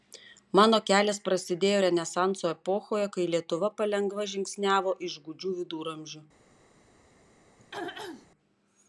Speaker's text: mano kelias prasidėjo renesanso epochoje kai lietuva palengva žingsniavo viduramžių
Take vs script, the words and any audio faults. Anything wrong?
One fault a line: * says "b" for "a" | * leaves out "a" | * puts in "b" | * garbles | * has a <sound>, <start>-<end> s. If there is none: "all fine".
* puts in "iš gūdžių"
* has a throat clearing, 7.6-8.3 s